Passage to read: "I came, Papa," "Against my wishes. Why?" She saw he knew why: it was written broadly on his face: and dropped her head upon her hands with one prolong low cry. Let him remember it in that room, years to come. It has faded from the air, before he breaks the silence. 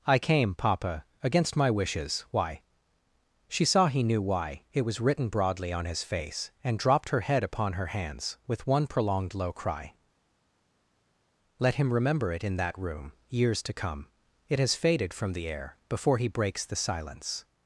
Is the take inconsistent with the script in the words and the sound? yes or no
yes